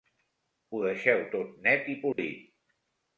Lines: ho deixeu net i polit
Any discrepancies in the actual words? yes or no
yes